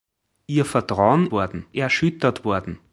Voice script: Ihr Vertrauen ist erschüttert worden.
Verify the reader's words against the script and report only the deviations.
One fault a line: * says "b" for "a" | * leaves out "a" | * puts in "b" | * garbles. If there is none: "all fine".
* says "worden" for "ist"